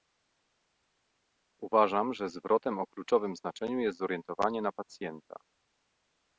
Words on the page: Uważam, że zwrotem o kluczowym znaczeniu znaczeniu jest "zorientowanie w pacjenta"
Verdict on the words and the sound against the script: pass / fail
fail